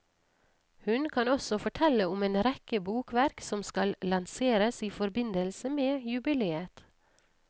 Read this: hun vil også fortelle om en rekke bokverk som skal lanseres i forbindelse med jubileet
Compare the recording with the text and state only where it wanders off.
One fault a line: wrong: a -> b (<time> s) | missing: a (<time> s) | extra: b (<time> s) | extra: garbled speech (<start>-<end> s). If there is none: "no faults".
wrong: vil -> kan (1.1 s)